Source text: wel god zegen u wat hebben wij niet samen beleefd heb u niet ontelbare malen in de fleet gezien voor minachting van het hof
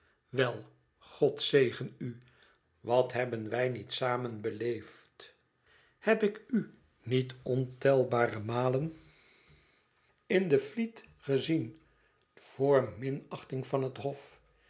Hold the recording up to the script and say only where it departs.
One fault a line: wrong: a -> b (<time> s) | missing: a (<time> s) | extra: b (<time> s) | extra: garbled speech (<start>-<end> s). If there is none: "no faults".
extra: ik (6.2 s)